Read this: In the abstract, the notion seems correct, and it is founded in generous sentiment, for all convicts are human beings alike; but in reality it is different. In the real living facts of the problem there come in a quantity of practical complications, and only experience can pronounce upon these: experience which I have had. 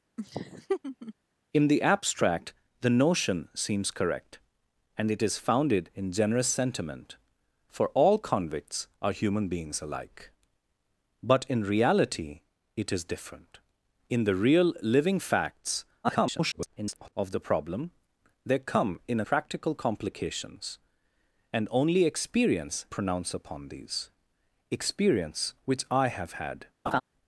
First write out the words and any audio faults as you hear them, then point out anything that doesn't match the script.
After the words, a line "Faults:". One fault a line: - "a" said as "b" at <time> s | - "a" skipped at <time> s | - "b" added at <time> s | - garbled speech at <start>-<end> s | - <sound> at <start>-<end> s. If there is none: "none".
In the abstract, the notion seems correct, and it is founded in generous sentiment, for all convicts are human beings alike; but in reality it is different. In the real living facts [garbled] of the problem there come in practical complications, and only experience pronounce upon these: experience which I have had.
Faults:
- laugh at 0.2-1.1 s
- garbled speech at 16.0-17.1 s
- "a quantity of" skipped at 19.2 s
- "can" skipped at 22.9 s
- laugh at 26.9-27.0 s